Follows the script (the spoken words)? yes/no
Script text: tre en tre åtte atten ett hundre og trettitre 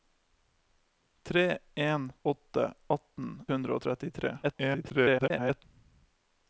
no